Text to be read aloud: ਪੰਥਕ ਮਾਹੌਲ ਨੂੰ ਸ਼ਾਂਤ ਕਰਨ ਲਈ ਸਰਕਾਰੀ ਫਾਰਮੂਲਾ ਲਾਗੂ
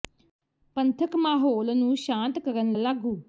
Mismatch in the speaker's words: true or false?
true